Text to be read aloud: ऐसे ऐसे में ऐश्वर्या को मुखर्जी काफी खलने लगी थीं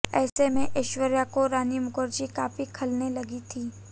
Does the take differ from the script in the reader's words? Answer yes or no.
yes